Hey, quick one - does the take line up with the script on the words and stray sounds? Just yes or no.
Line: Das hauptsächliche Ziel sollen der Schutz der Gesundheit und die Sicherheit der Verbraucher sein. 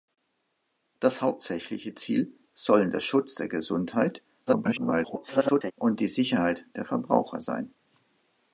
no